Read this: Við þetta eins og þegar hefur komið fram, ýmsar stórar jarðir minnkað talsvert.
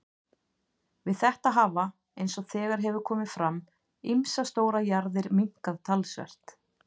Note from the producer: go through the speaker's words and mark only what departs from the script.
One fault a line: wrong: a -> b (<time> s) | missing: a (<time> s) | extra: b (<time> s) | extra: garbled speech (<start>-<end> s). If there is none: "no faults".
extra: hafa (1.6 s)